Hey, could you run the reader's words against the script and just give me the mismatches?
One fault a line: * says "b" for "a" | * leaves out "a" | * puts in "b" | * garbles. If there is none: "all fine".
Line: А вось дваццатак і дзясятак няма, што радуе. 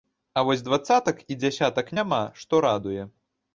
all fine